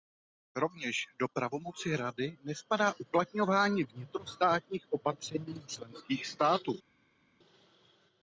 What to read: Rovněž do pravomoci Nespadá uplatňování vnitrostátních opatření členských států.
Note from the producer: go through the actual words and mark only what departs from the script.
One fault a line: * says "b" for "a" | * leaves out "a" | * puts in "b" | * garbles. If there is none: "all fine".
* puts in "Rady"